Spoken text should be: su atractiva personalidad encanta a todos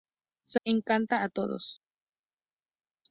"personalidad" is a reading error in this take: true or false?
true